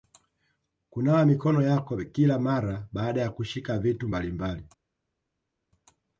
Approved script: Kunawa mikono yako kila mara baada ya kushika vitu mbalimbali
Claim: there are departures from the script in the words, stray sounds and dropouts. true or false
false